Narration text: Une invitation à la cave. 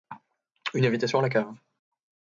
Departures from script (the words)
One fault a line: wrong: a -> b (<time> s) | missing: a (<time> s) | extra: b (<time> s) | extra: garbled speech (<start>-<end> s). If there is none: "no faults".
no faults